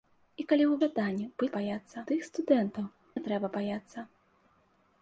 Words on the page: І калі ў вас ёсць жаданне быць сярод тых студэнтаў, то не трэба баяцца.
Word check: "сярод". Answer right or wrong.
wrong